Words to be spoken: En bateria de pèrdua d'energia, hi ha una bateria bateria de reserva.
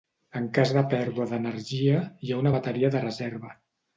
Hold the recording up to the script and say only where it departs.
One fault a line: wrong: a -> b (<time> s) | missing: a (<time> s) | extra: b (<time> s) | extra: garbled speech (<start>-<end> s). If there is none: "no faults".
wrong: bateria -> cas (0.6 s)
missing: bateria (2.9 s)